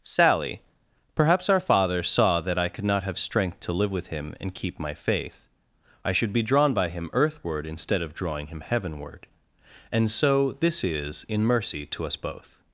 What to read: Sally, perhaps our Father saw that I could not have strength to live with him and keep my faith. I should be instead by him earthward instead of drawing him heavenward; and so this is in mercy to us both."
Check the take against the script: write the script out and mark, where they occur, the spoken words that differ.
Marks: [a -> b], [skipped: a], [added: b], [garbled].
Sally, perhaps our Father saw that I could not have strength to live with him and keep my faith. I should be [instead -> drawn] by him earthward instead of drawing him heavenward; and so this is in mercy to us both."